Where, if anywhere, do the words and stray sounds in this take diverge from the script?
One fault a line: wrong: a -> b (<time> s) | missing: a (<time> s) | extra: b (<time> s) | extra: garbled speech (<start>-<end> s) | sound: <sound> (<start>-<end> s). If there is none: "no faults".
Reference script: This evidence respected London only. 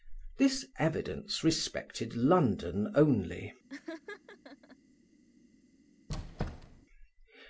sound: laugh (3.7-4.8 s)
sound: squeak (6.1-6.9 s)